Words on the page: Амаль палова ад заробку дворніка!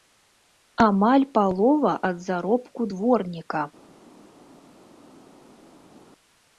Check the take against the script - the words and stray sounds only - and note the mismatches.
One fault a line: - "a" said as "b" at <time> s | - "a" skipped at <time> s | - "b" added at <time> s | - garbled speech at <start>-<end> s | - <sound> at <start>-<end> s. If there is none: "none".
none